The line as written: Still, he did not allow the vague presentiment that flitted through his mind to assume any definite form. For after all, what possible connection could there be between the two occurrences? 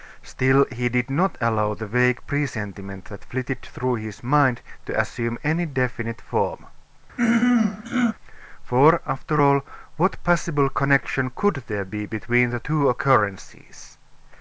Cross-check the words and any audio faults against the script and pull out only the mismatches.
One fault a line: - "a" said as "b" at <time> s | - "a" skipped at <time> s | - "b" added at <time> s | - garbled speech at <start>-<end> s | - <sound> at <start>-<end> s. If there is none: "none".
- throat clearing at 7.2-8.1 s